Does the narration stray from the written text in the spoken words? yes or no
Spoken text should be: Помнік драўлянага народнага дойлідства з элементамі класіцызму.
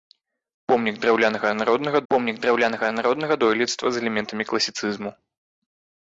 yes